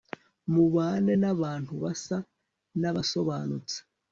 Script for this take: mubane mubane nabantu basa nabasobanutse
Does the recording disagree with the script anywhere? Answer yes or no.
yes